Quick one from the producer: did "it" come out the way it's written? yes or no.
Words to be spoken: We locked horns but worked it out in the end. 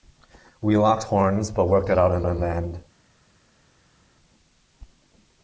yes